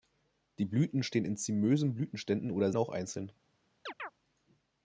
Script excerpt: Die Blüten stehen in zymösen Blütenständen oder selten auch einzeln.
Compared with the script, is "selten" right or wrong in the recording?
wrong